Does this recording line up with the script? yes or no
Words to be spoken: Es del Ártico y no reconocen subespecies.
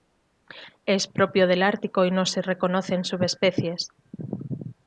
no